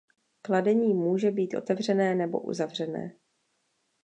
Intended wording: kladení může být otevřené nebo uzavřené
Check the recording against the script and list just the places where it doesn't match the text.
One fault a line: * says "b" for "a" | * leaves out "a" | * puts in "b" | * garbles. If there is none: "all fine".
all fine